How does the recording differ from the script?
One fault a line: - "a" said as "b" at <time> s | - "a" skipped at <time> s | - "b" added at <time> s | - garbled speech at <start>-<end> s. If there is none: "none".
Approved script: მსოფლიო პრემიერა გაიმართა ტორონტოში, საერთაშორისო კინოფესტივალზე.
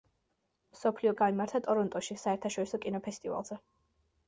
- "პრემიერა" skipped at 1.1 s